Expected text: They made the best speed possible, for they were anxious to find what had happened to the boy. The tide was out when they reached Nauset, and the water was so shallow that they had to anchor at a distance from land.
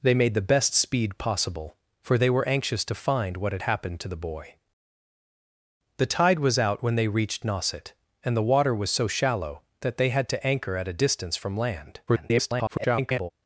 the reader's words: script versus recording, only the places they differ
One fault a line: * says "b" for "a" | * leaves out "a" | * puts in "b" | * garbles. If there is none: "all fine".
* garbles